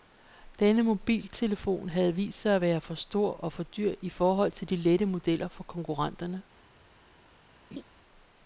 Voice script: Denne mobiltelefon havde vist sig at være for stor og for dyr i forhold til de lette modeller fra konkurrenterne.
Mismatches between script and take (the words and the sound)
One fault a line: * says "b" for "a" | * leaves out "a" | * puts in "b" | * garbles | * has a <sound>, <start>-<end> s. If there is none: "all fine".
* has a laugh, 7.7-7.8 s